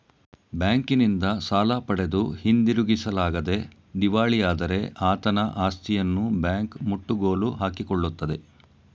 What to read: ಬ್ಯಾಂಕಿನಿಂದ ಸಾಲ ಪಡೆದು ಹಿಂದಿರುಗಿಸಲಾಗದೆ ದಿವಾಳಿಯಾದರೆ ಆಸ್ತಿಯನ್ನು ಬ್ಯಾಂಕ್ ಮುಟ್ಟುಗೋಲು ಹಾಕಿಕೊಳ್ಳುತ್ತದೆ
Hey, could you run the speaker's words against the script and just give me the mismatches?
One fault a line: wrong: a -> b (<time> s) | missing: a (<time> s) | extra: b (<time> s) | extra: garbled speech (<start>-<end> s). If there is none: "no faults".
extra: ಆತನ (5.1 s)